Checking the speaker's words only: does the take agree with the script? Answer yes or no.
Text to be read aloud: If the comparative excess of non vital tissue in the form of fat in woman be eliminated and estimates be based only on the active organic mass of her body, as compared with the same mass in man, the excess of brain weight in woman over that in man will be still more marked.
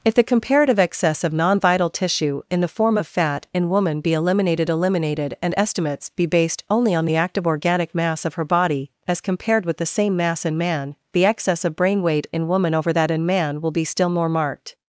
no